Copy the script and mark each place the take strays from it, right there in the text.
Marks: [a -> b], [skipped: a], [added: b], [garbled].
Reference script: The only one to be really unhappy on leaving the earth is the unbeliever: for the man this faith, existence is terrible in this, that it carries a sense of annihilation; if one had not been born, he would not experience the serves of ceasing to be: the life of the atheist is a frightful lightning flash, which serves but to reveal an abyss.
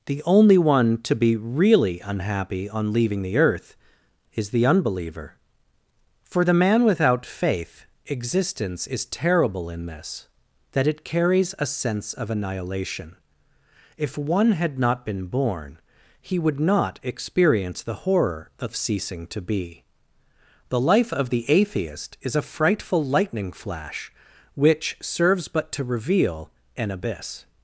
The only one to be really unhappy on leaving the earth is the unbeliever: for the man [this -> without] faith, existence is terrible in this, that it carries a sense of annihilation; if one had not been born, he would not experience the [serves -> horror] of ceasing to be: the life of the atheist is a frightful lightning flash, which serves but to reveal an abyss.